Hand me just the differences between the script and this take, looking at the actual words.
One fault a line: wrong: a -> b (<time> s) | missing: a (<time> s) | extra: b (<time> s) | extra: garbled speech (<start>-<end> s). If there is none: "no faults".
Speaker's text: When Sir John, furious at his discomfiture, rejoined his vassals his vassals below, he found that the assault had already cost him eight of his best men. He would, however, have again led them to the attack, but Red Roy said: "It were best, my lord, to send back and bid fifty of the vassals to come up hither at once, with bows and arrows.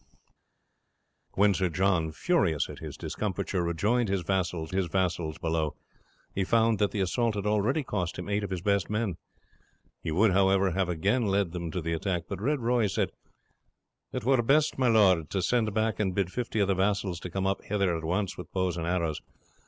no faults